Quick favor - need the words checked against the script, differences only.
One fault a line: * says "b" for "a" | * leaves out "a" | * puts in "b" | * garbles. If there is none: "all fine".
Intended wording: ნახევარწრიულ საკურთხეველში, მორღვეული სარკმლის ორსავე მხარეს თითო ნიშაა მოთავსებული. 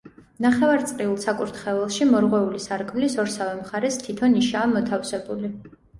all fine